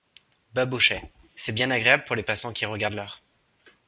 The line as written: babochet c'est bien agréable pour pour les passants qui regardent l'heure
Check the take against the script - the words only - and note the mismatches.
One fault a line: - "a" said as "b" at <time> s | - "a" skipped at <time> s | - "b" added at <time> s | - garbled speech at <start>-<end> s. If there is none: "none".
- "pour" skipped at 2.1 s